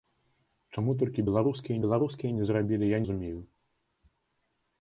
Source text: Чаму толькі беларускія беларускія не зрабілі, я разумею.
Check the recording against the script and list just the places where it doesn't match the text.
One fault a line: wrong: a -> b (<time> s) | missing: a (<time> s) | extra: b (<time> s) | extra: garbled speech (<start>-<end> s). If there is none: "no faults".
no faults